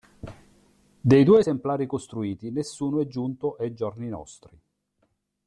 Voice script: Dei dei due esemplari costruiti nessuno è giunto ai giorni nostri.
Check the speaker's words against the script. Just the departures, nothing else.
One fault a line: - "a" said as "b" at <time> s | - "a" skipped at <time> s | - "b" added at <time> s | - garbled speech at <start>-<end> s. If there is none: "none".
- "dei" skipped at 1.2 s